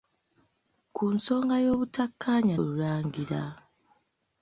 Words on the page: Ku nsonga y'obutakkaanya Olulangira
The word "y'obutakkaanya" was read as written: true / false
true